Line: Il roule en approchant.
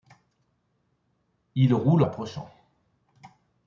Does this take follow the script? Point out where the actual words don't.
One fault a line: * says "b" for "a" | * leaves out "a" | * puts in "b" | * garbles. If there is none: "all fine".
* leaves out "en"